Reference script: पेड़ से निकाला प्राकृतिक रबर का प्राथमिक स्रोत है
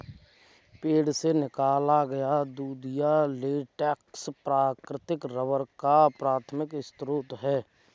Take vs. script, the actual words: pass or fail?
fail